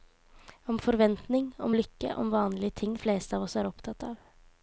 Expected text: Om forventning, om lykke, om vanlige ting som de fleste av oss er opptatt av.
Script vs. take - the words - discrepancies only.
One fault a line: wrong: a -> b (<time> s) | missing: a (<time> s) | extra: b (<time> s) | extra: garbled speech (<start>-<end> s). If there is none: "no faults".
missing: som de (3.0 s)